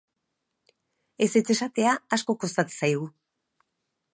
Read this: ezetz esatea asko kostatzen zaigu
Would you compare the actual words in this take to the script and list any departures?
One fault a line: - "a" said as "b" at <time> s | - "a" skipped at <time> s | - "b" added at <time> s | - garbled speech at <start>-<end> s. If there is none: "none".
none